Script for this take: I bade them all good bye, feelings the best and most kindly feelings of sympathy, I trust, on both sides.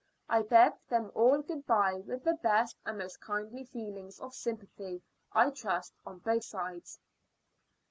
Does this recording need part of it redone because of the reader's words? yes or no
yes